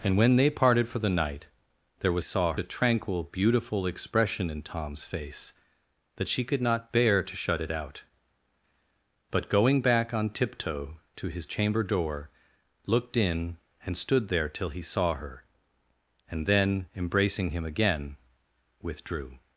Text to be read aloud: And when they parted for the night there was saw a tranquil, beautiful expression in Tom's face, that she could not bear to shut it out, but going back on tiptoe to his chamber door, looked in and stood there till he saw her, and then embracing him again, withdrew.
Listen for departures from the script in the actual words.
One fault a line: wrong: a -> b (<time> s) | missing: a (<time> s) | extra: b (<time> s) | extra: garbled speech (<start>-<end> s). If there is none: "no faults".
no faults